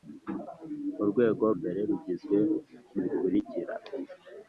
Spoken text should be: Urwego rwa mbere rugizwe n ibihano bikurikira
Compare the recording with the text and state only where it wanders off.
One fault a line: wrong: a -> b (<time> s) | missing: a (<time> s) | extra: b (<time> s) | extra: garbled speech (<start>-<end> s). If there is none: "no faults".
missing: rwa (1.4 s)
missing: ibihano (3.0 s)